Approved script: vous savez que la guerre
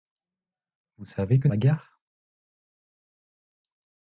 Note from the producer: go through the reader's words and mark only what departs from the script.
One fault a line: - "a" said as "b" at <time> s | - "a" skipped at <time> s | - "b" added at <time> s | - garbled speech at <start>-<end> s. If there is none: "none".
none